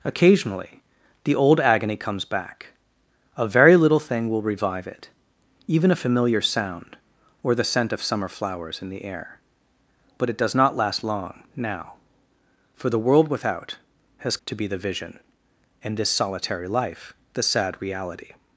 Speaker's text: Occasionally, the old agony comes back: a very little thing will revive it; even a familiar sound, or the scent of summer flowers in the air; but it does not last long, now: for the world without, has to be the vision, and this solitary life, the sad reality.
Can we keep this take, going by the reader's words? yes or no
yes